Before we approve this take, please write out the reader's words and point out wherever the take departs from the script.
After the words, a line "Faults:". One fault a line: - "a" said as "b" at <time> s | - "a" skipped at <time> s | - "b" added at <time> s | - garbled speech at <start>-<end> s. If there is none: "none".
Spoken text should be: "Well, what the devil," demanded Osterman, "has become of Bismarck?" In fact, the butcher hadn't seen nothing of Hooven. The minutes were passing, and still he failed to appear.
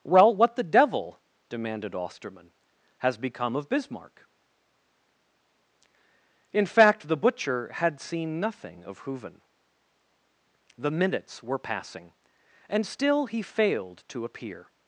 "Well, what the devil," demanded Osterman, "has become of Bismarck?" In fact, the butcher had seen nothing of Hooven. The minutes were passing, and still he failed to appear.
Faults:
- "hadn't" said as "had" at 7.7 s